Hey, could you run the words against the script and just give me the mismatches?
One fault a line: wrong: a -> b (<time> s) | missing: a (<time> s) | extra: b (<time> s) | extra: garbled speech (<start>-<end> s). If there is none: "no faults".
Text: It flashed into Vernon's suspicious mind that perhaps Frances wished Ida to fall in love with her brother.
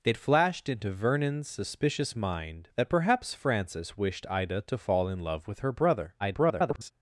extra: garbled speech (6.2-6.9 s)